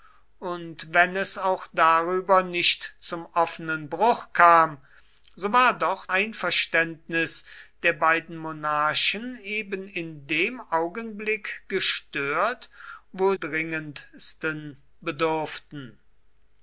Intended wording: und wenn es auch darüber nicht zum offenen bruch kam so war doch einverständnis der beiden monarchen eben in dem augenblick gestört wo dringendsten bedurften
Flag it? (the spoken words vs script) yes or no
no